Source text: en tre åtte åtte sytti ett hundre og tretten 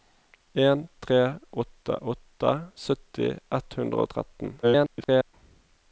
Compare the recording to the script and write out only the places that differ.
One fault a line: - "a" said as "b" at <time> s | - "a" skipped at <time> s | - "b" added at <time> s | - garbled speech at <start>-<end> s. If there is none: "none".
- garbled speech at 4.6-5.3 s